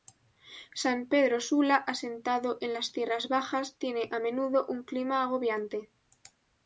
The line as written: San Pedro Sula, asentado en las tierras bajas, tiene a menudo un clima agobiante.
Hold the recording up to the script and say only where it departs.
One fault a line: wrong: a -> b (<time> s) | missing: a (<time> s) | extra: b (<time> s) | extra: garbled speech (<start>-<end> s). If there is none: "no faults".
no faults